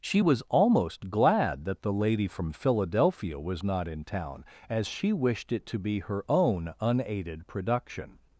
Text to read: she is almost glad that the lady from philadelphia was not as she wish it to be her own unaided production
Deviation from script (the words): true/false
true